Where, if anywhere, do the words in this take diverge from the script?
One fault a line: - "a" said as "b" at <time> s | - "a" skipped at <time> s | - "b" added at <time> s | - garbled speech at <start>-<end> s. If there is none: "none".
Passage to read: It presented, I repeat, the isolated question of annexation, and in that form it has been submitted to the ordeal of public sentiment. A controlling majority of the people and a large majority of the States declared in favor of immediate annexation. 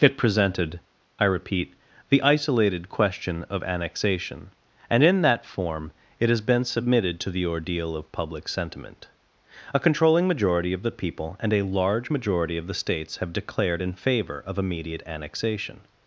- "have" added at 13.2 s